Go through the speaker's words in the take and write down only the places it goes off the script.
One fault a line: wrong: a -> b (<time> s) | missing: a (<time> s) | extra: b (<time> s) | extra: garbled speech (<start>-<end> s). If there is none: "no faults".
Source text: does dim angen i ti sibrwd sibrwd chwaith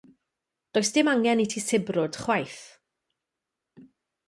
missing: sibrwd (2.2 s)